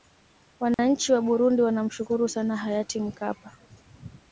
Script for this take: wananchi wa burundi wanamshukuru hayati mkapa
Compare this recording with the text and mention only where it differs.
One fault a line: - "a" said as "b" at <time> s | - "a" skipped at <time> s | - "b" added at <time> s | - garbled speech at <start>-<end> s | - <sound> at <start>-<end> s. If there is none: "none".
- dropout at 0.7-0.8 s
- "sana" added at 2.3 s